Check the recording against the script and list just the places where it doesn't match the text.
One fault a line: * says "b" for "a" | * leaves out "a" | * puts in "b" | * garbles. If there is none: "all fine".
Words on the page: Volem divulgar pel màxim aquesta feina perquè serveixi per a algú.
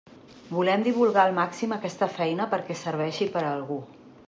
* says "al" for "pel"